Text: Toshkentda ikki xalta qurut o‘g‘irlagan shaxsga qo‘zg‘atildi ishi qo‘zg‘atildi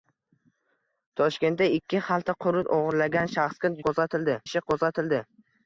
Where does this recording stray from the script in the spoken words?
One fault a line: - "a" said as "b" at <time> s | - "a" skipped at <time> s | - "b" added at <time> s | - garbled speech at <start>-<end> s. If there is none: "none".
none